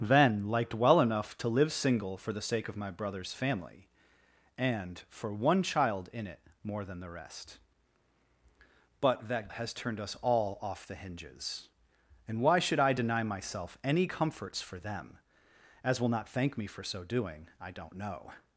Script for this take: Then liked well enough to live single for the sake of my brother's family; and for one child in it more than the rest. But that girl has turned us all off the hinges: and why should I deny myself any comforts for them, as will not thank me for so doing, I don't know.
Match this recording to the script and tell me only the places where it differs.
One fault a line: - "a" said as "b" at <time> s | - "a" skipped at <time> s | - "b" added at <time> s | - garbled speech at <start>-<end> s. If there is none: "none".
- "girl" skipped at 9.5 s